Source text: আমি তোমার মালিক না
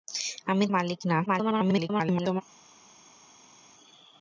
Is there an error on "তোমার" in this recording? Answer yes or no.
yes